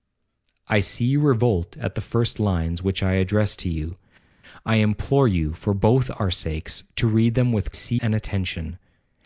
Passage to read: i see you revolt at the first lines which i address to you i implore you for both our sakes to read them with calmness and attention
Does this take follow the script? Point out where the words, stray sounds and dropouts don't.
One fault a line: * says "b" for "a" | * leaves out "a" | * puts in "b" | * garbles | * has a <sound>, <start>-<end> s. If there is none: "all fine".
* says "see" for "calmness"